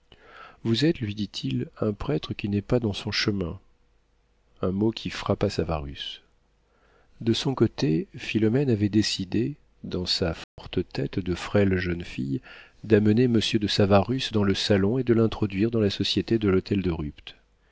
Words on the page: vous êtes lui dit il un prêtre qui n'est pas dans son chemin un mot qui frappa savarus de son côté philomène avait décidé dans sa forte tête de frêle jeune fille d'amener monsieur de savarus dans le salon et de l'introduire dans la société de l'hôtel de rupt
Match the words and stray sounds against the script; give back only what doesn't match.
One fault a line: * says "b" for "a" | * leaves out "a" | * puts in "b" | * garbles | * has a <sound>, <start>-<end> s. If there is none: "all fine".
* has a dropout, 10.4-10.6 s